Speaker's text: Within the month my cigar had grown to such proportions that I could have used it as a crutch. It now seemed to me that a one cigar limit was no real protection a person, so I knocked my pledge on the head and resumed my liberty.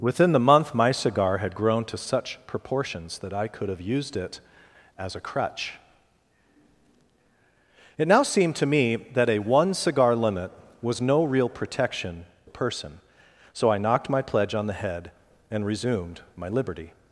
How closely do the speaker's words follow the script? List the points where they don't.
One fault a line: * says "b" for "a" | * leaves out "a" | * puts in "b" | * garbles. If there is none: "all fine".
all fine